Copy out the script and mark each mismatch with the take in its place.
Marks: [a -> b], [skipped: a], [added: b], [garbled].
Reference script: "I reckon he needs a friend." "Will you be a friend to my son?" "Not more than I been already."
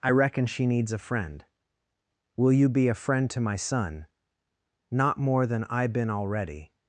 "I reckon [he -> she] needs a friend." "Will you be a friend to my son?" "Not more than I been already."